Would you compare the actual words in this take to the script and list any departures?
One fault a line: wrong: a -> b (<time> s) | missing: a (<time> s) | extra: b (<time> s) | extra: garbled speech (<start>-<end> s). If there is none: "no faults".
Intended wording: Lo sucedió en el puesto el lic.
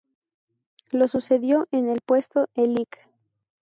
no faults